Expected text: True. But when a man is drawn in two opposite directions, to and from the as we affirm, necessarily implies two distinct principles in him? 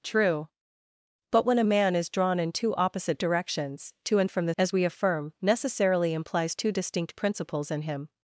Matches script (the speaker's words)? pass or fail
pass